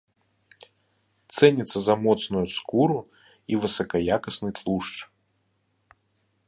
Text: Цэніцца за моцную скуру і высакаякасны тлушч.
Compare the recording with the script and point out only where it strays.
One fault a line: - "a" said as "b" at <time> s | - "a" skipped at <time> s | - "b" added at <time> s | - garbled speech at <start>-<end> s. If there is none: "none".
none